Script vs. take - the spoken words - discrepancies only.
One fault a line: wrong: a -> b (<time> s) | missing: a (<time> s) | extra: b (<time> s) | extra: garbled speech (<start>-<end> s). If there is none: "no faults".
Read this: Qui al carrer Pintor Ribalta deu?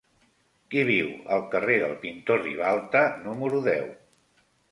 extra: viu (0.9 s)
extra: del (1.8 s)
extra: número (3.3 s)